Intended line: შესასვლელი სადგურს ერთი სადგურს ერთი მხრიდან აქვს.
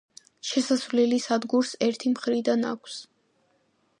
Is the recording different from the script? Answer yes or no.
yes